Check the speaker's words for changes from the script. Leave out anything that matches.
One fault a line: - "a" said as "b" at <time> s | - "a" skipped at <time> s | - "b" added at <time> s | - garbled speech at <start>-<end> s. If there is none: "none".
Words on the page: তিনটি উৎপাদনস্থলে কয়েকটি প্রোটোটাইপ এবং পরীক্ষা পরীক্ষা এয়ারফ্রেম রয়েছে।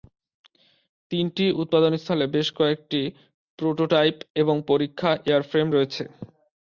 - "বেশ" added at 2.4 s
- "পরীক্ষা" skipped at 5.1 s